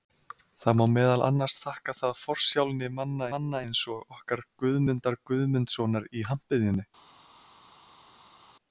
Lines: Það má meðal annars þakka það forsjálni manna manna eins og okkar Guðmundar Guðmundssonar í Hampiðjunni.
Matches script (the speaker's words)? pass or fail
pass